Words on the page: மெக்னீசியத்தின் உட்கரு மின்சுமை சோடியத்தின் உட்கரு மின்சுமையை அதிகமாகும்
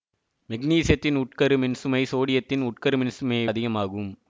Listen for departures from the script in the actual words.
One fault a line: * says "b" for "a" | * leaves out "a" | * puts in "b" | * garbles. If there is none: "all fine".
all fine